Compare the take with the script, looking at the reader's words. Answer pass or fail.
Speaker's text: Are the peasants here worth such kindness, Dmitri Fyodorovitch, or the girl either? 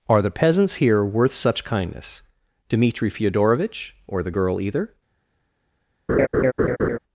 pass